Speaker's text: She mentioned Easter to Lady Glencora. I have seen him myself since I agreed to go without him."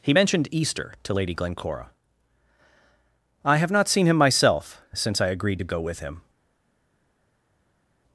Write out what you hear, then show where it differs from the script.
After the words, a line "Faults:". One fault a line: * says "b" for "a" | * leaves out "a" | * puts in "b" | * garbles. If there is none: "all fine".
He mentioned Easter to Lady Glencora. I have not seen him myself since I agreed to go with him."
Faults:
* says "He" for "She"
* puts in "not"
* says "with" for "without"